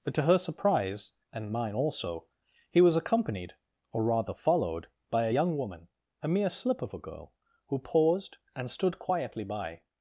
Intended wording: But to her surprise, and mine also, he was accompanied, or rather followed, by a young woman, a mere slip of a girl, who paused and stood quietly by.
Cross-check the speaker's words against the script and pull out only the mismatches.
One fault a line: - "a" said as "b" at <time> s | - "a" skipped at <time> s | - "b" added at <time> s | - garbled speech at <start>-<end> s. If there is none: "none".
none